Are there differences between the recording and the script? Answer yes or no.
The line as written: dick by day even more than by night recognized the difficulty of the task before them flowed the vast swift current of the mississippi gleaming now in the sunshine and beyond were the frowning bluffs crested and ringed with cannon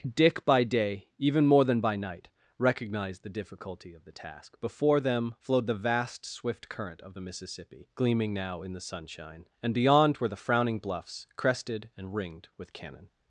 no